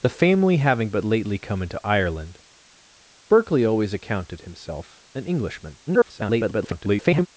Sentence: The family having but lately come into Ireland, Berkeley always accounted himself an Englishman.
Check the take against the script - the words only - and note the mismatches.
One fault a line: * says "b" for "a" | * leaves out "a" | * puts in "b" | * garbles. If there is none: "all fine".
* garbles